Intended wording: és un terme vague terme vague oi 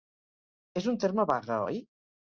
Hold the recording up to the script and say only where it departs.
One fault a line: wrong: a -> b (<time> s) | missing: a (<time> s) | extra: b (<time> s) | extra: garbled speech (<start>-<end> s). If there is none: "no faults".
missing: terme vague (1.6 s)